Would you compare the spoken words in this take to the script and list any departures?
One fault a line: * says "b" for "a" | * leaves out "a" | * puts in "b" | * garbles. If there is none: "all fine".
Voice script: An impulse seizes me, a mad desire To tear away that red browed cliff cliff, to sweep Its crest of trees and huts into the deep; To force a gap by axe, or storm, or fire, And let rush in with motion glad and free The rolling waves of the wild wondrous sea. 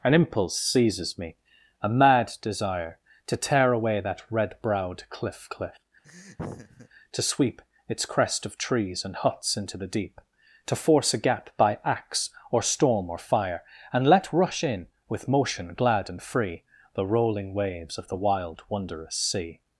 all fine